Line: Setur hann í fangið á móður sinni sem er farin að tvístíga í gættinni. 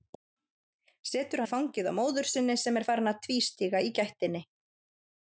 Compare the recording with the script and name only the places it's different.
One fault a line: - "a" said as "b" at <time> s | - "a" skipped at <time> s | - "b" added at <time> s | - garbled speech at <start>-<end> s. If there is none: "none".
- "hann" skipped at 1.4 s